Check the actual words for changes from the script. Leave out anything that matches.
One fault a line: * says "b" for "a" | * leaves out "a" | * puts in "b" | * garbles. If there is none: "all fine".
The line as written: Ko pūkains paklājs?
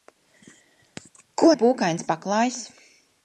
all fine